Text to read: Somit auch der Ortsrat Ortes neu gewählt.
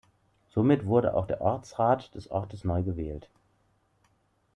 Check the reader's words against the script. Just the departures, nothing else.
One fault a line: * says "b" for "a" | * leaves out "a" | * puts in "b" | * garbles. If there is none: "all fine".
* puts in "wurde"
* puts in "des"